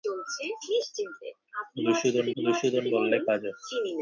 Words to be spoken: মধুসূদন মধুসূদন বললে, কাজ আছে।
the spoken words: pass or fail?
pass